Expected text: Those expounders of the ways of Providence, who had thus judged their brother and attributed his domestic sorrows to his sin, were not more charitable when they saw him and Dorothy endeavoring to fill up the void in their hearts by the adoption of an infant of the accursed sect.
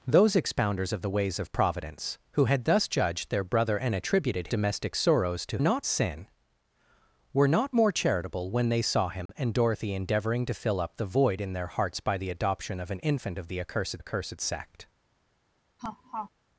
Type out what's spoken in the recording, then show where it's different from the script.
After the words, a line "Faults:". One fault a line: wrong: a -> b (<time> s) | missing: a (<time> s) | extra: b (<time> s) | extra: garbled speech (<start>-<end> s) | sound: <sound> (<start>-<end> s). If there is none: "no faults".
Those expounders of the ways of Providence, who had thus judged their brother and attributed domestic sorrows to not sin, were not more charitable when they saw him and Dorothy endeavoring to fill up the void in their hearts by the adoption of an infant of the accursed accursed sect.
Faults:
missing: his (4.5 s)
wrong: his -> not (5.6 s)
sound: dropout (9.3-9.3 s)
extra: accursed (14.0 s)
sound: laugh (15.8-16.3 s)